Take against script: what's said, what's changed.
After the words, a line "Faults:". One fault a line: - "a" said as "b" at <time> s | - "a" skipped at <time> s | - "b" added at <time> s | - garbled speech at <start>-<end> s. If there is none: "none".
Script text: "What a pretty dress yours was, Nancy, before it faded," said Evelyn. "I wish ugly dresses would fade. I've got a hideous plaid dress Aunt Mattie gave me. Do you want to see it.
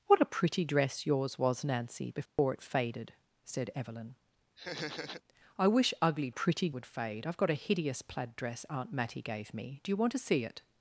"What a pretty dress yours was, Nancy, before it faded," said Evelyn. "I wish ugly pretty would fade. I've got a hideous plaid dress Aunt Mattie gave me. Do you want to see it.
Faults:
- "dresses" said as "pretty" at 6.3 s